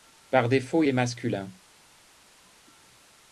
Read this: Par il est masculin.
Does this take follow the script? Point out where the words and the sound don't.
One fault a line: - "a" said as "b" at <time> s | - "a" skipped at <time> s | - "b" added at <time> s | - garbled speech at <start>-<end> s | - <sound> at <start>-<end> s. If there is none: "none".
- "défaut" added at 0.5 s